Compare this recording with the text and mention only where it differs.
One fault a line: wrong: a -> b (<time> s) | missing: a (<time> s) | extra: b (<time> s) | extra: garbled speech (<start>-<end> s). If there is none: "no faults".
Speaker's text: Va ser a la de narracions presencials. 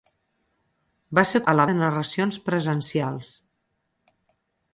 no faults